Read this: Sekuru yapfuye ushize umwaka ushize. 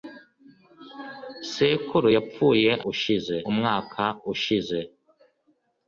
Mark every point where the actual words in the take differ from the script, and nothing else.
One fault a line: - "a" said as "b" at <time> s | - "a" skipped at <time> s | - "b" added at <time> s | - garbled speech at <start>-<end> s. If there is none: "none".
none